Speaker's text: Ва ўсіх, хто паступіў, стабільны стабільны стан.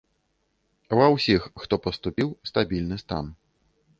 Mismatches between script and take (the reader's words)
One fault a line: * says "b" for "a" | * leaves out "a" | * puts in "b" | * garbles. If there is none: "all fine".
* leaves out "стабільны"